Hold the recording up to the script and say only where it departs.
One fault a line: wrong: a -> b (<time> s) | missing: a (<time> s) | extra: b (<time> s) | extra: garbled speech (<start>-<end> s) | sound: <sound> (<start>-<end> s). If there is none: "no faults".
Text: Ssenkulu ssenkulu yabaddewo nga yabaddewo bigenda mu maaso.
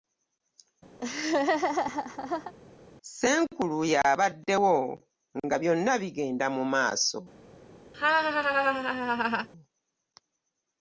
sound: laugh (1.0-2.5 s)
missing: ssenkulu (3.8 s)
wrong: yabaddewo -> byonna (5.6 s)
sound: laugh (7.9-9.5 s)